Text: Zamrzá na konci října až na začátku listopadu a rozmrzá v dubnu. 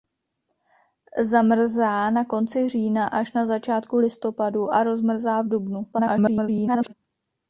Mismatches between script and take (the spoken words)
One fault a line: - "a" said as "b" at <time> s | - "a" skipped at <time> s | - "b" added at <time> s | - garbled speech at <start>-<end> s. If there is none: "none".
- garbled speech at 5.9-6.9 s